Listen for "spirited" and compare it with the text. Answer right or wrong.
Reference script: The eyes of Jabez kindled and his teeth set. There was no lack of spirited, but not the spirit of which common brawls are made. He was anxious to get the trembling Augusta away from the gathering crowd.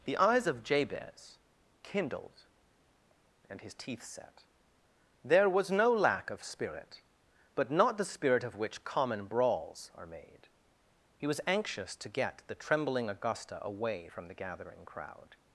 wrong